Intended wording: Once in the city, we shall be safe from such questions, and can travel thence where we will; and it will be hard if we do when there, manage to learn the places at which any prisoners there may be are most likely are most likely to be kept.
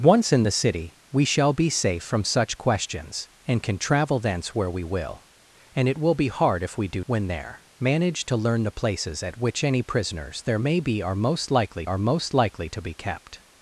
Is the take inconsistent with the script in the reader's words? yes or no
no